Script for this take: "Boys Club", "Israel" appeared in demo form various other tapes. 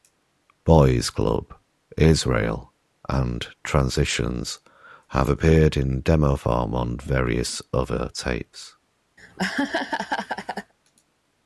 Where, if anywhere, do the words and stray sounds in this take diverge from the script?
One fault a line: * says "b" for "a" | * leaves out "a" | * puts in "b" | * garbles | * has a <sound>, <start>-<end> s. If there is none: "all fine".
* puts in "and Transitions have"
* puts in "on"
* has a laugh, 9.2-10.7 s